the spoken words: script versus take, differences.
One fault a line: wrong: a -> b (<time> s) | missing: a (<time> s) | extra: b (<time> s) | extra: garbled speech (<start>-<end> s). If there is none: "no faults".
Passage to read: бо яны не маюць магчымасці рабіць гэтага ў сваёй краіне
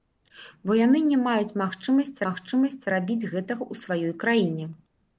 extra: магчымасці (2.3 s)